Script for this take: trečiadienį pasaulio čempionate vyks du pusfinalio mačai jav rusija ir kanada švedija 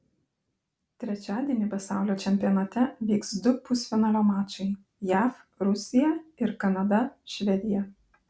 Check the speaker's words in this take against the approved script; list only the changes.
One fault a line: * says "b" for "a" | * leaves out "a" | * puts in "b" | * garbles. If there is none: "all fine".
all fine